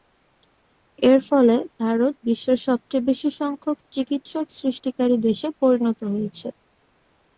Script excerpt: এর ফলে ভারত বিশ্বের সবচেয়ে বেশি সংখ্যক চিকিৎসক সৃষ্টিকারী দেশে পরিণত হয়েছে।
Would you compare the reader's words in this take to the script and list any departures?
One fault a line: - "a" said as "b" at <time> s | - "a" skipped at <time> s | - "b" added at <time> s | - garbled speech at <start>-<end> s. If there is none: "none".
none